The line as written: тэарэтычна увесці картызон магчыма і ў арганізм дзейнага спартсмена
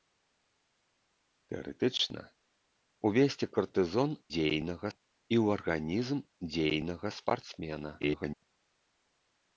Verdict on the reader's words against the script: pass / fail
fail